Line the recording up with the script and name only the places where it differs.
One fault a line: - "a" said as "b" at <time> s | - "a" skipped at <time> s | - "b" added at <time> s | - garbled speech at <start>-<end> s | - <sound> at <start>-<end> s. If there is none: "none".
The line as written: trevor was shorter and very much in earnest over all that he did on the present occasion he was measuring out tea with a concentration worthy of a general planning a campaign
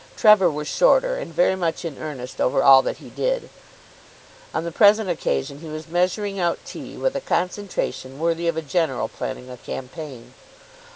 none